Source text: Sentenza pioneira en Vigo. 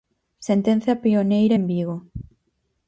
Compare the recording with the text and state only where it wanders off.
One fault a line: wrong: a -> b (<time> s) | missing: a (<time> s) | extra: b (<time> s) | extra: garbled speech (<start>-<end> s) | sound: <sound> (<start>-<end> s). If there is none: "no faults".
no faults